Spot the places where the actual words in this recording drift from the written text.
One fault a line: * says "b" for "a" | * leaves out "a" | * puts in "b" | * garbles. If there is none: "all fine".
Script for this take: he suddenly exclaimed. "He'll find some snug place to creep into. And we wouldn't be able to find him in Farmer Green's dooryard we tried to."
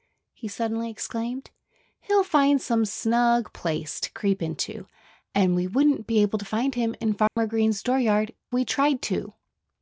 all fine